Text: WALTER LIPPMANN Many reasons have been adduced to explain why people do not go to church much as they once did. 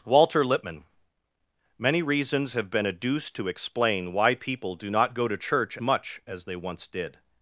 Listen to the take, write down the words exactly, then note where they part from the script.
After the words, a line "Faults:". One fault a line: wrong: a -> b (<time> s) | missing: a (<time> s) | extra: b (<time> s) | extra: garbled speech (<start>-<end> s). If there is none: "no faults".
WALTER LIPPMANN Many reasons have been adduced to explain why people do not go to church much as they once did.
Faults:
no faults